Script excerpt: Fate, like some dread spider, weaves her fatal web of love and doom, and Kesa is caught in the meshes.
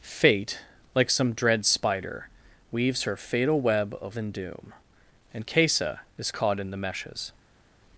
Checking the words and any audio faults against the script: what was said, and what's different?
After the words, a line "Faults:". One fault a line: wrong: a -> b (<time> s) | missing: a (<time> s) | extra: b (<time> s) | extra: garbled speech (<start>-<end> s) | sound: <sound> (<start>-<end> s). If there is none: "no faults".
Fate, like some dread spider, weaves her fatal web of and doom, and Kesa is caught in the meshes.
Faults:
missing: love (4.2 s)